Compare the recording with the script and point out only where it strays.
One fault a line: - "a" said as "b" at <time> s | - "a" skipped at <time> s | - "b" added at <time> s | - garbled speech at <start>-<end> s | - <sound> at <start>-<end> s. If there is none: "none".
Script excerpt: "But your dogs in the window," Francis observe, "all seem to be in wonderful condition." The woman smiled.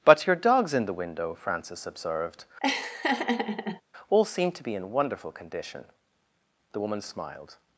- "observe" said as "observed" at 1.9 s
- laugh at 2.6-3.8 s